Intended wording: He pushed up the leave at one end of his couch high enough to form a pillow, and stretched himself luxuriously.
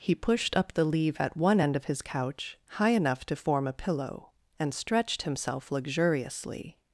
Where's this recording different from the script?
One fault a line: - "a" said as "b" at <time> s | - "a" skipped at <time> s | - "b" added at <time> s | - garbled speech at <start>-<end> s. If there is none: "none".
none